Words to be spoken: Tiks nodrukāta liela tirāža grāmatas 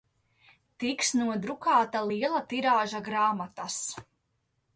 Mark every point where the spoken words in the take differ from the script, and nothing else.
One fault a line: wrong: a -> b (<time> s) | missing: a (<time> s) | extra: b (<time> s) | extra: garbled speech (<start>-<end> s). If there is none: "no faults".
no faults